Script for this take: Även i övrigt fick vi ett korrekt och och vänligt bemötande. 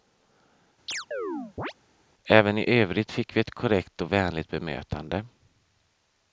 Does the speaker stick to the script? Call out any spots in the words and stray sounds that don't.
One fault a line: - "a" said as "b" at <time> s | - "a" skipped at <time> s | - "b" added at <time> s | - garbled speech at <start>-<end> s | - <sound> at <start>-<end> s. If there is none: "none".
- chirp at 0.9-1.7 s
- "och" skipped at 4.1 s